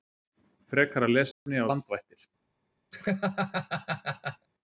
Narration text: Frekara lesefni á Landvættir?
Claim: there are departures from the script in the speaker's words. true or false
false